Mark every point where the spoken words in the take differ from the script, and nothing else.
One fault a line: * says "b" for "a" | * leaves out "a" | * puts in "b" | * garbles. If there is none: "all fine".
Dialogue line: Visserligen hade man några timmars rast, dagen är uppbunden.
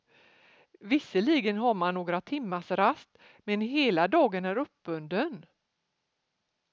* says "har" for "hade"
* puts in "men hela"